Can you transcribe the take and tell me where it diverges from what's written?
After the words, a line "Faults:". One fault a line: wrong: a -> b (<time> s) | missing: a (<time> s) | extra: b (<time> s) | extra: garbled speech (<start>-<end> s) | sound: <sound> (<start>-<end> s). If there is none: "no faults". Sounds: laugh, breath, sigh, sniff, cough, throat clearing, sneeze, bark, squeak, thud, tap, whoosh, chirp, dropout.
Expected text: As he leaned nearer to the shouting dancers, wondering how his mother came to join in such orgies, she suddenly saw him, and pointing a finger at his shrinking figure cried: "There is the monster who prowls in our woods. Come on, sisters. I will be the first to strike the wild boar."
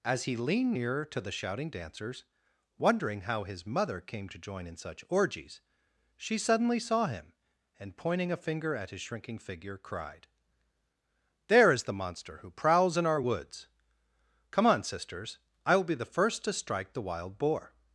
As he leaned nearer to the shouting dancers, wondering how his mother came to join in such orgies, she suddenly saw him, and pointing a finger at his shrinking figure cried: "There is the monster who prowls in our woods. Come on, sisters. I will be the first to strike the wild boar."
Faults:
no faults